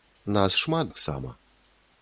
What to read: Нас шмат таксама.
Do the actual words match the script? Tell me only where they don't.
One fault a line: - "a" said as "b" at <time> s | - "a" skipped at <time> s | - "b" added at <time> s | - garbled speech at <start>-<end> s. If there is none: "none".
none